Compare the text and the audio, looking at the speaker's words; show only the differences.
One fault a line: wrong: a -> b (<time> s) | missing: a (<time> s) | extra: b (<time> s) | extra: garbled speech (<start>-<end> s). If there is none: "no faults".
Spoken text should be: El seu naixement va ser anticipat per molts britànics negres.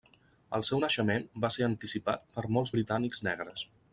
no faults